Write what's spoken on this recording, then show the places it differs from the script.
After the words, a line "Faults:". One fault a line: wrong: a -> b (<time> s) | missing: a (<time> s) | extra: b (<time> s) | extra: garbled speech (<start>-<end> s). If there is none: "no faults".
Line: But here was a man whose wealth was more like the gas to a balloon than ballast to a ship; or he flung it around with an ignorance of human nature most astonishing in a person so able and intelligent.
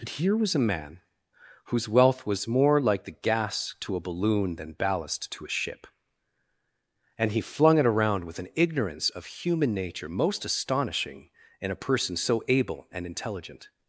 But here was a man whose wealth was more like the gas to a balloon than ballast to a ship; and he flung it around with an ignorance of human nature most astonishing in a person so able and intelligent.
Faults:
wrong: or -> and (7.2 s)